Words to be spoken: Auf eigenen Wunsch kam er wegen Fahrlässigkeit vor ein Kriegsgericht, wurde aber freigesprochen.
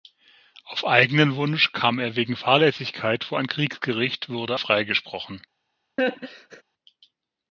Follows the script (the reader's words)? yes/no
no